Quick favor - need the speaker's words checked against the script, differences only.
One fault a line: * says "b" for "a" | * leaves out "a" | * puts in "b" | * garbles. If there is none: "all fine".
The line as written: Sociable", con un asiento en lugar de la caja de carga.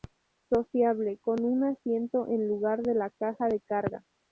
all fine